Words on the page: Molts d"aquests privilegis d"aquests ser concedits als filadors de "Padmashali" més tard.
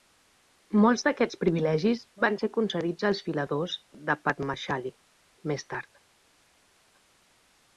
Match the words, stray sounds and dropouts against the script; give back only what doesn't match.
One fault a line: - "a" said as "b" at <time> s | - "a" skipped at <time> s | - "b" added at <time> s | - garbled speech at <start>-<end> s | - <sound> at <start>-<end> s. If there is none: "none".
- "d"aquests" said as "van" at 2.3 s